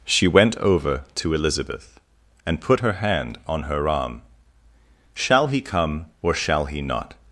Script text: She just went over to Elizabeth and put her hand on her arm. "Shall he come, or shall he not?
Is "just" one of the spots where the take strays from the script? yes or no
yes